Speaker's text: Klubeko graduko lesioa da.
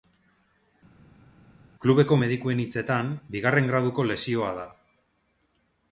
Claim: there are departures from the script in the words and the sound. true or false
true